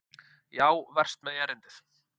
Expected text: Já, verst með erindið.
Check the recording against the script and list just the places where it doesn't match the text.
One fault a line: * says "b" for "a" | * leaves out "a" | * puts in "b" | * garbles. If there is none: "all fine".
all fine